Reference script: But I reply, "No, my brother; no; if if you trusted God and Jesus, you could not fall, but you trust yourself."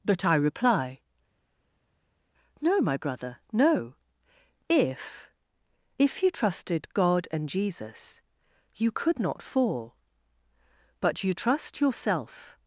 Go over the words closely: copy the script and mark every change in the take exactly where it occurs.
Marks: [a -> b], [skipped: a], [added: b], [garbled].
But I reply, "No, my brother; no; if if you trusted God and Jesus, you could not fall, but you trust yourself."